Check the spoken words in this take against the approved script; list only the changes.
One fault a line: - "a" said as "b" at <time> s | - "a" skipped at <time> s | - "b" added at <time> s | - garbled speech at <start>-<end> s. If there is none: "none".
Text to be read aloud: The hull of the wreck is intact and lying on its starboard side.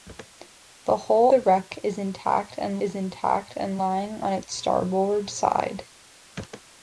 - "of" skipped at 1.3 s
- "is intact and" added at 2.8 s